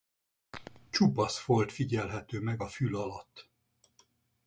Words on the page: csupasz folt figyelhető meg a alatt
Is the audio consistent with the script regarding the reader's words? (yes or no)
no